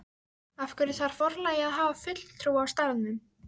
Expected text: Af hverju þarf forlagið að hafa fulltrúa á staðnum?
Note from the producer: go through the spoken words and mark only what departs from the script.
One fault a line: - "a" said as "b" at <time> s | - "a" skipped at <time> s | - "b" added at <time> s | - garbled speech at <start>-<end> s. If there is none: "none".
none